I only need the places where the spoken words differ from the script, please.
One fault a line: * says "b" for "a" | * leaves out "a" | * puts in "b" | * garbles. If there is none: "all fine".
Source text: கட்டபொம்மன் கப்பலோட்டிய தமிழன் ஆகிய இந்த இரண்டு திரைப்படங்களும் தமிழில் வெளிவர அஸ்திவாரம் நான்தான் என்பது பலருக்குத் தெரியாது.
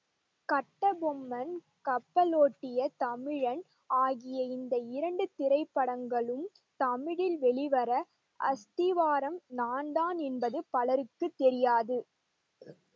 all fine